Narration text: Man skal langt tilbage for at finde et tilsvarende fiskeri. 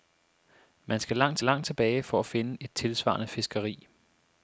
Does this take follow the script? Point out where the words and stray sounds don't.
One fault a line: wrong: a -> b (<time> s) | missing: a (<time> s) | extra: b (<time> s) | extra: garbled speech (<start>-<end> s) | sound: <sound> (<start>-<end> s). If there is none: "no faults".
extra: langt (1.4 s)